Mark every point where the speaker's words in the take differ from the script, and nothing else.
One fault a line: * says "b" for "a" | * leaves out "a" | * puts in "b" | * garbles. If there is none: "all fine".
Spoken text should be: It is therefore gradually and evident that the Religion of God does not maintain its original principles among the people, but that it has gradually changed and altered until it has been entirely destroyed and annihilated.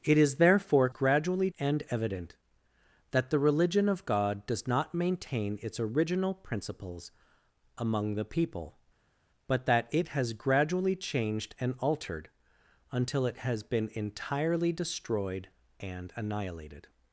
all fine